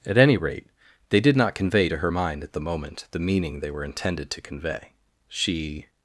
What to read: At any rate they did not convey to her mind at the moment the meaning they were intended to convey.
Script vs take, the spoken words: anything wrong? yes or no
yes